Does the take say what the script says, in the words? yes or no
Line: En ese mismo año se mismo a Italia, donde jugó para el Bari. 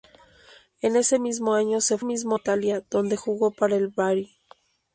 yes